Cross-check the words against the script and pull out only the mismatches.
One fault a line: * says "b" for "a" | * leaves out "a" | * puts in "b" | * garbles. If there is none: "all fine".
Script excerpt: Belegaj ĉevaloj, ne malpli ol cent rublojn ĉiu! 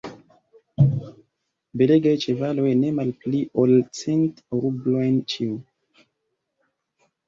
all fine